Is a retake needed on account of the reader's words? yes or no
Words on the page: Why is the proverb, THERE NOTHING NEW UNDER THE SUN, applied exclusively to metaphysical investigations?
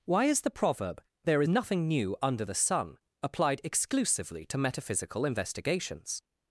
no